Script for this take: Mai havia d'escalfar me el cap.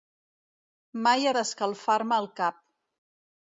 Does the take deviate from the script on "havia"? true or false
true